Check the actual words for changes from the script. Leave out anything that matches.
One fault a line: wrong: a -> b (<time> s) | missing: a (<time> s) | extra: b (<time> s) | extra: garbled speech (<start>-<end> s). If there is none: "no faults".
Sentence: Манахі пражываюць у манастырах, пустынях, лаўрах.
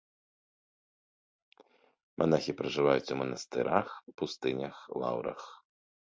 no faults